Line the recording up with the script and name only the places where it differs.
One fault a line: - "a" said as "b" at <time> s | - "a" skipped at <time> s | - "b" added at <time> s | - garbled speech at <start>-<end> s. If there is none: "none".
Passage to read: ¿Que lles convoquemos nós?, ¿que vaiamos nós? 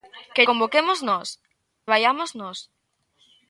- "lles" skipped at 0.4 s
- "que" skipped at 1.3 s